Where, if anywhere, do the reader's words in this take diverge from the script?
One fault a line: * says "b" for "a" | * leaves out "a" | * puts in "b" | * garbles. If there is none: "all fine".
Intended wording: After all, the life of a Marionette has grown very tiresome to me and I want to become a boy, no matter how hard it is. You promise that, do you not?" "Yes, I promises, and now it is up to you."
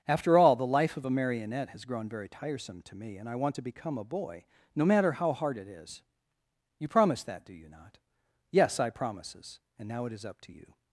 all fine